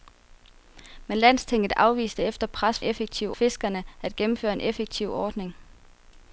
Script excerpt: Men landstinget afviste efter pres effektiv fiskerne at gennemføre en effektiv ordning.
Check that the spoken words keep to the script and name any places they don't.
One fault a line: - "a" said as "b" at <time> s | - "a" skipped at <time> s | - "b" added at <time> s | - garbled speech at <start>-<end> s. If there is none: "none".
none